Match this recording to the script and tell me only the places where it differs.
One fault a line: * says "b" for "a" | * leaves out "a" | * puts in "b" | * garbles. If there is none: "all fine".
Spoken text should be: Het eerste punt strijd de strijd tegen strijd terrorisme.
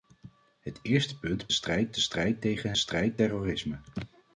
all fine